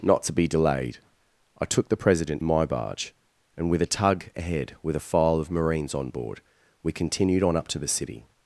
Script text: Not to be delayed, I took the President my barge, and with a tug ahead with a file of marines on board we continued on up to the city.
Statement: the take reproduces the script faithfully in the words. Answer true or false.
true